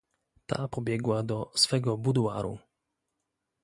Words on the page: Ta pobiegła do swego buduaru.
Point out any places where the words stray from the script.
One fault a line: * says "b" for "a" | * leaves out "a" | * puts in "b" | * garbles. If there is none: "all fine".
all fine